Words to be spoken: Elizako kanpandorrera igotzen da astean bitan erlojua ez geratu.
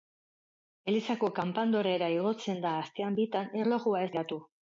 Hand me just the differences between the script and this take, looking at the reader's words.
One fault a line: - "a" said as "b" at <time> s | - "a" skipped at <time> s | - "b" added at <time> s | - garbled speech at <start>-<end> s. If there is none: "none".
none